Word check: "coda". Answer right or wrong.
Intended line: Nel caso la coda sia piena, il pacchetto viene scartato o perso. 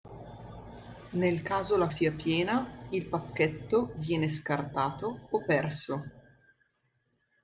wrong